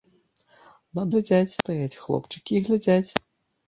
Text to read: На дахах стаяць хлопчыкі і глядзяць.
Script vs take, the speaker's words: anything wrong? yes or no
yes